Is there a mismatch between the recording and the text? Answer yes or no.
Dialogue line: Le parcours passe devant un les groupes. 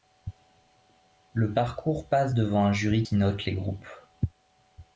yes